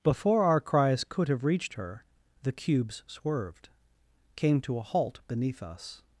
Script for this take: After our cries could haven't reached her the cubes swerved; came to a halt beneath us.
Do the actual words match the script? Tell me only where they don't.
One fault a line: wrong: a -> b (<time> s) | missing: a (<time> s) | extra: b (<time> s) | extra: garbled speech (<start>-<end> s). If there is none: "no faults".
wrong: After -> Before (0.0 s)
wrong: haven't -> have (1.3 s)